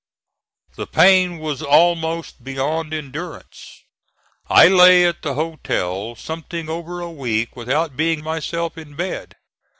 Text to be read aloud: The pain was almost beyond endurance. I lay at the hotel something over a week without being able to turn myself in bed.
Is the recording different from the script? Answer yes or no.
yes